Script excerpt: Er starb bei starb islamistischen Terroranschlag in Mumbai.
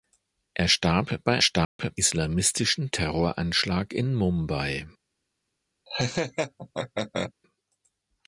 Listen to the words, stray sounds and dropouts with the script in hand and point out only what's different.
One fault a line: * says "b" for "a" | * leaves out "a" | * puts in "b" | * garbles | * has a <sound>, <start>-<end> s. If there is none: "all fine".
* has a dropout, 1.6-1.8 s
* has a laugh, 5.9-7.3 s